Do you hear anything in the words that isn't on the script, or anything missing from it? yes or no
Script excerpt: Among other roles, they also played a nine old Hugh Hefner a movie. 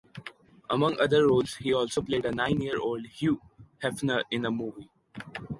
yes